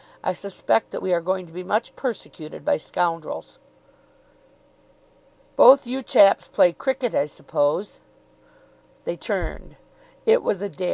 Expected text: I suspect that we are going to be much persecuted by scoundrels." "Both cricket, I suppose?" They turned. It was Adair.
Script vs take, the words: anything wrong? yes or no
yes